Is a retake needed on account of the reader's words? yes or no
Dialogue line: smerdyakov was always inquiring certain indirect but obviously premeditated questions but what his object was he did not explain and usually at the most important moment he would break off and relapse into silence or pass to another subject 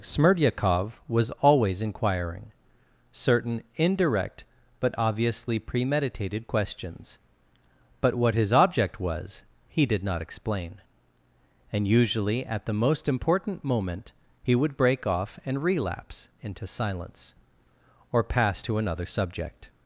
no